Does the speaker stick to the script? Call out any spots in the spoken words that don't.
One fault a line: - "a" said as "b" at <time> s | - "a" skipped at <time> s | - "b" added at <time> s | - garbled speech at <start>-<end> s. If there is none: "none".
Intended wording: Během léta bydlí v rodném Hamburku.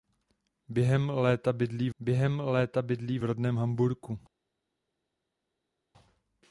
- "během léta bydlí" added at 2.0 s